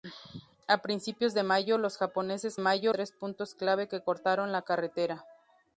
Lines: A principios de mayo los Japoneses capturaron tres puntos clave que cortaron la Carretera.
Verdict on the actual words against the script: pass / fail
fail